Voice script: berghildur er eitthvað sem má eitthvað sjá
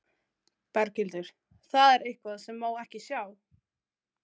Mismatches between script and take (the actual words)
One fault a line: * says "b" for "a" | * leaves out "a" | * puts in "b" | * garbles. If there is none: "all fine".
* puts in "það"
* says "ekki" for "eitthvað"